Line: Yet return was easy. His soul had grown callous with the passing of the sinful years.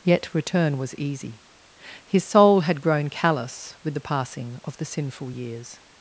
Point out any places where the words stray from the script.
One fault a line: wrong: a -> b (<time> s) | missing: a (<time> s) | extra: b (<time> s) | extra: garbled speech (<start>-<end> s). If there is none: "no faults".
no faults